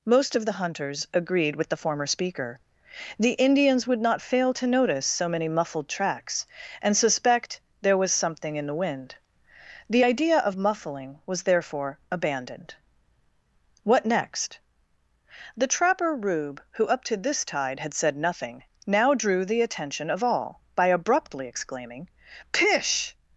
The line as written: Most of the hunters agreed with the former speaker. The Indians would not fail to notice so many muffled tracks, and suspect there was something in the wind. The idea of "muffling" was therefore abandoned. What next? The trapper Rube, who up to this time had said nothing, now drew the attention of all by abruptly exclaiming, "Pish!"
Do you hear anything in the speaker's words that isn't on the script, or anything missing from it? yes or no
yes